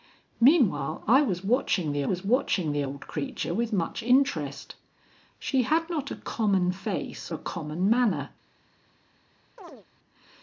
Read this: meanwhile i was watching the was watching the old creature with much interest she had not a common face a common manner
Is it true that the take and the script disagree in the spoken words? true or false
false